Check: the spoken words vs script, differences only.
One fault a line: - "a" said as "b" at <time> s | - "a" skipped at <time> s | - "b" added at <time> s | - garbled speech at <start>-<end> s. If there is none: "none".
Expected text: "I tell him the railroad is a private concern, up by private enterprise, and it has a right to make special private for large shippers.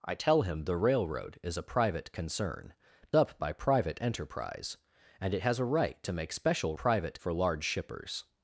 none